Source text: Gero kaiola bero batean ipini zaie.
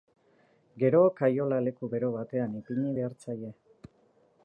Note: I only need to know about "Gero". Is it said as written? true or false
true